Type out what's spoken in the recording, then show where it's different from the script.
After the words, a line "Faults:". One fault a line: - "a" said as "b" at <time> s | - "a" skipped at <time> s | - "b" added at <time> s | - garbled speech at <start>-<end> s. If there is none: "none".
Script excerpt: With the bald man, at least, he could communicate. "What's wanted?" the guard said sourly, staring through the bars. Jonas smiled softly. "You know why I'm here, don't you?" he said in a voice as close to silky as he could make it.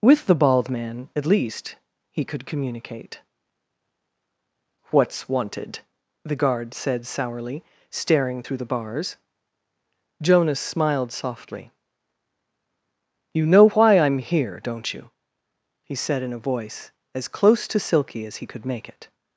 With the bald man, at least, he could communicate. "What's wanted?" the guard said sourly, staring through the bars. Jonas smiled softly. "You know why I'm here, don't you?" he said in a voice as close to silky as he could make it.
Faults:
none